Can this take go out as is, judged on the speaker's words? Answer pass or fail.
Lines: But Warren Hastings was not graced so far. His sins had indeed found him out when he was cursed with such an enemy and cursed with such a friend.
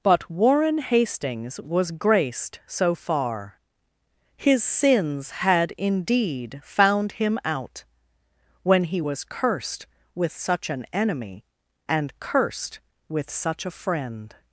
fail